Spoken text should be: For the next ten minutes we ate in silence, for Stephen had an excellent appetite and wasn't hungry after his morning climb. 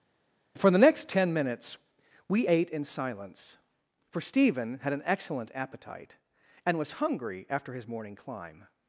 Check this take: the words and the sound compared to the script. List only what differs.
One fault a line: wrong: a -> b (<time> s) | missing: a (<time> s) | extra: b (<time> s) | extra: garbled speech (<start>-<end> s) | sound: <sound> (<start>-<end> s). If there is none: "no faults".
wrong: wasn't -> was (6.8 s)